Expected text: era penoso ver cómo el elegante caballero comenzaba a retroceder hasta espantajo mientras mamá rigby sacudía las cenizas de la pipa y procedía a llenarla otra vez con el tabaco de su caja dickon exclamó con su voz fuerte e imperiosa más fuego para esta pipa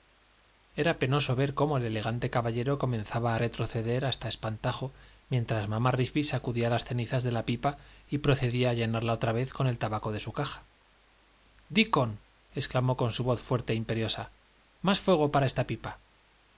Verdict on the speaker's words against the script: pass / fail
pass